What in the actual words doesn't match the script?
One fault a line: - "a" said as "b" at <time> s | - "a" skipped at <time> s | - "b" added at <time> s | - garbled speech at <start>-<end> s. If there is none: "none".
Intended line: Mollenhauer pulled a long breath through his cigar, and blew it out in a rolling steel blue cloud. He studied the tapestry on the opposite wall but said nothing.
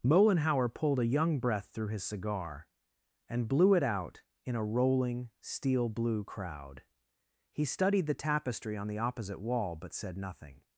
- "long" said as "young" at 1.1 s
- "cloud" said as "crowd" at 6.2 s